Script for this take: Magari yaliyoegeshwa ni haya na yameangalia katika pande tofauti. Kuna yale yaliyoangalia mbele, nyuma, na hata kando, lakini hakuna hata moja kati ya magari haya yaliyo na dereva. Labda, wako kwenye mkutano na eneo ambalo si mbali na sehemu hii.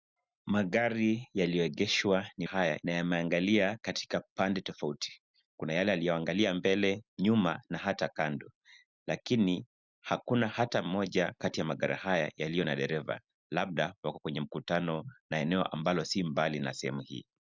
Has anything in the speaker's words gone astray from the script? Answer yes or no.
no